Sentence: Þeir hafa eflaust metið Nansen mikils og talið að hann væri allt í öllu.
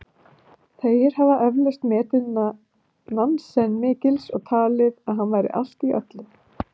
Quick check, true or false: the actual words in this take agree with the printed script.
true